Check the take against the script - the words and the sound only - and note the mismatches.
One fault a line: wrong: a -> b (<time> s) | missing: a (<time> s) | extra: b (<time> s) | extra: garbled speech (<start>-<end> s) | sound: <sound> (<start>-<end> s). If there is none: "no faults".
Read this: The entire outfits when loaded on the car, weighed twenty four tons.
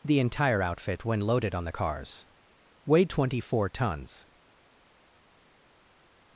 wrong: outfits -> outfit (0.6 s)
wrong: car -> cars (1.7 s)